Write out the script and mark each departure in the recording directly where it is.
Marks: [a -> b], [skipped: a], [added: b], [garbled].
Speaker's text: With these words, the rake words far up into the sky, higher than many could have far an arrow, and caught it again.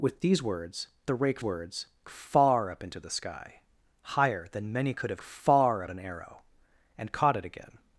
With these words, the rake words far up into the sky, higher than many could have far an arrow, and caught it again.